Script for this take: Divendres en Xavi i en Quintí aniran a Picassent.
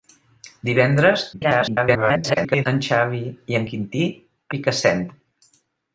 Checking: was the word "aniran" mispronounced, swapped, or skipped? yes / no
yes